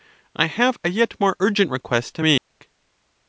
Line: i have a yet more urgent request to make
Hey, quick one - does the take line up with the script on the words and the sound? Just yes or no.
no